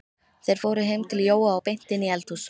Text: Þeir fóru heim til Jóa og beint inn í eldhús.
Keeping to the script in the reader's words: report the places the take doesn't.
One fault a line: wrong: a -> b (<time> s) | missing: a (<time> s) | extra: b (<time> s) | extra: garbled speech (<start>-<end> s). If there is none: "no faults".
no faults